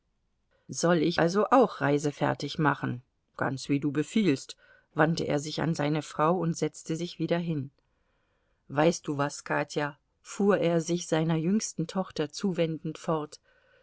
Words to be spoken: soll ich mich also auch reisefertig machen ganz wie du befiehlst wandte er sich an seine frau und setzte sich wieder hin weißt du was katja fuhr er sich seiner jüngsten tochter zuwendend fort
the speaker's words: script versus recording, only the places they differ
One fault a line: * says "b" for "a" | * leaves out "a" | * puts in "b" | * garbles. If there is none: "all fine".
* leaves out "mich"